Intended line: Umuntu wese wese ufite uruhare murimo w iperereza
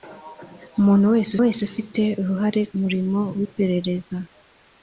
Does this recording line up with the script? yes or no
yes